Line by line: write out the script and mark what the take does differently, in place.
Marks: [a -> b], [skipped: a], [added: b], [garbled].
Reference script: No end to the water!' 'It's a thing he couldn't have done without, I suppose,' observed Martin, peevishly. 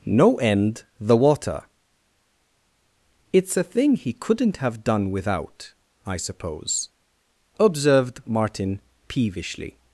No end [skipped: to] the water!' 'It's a thing he couldn't have done without, I suppose,' observed Martin, peevishly.